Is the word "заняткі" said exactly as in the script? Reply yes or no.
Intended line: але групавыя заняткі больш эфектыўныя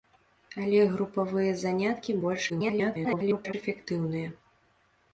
yes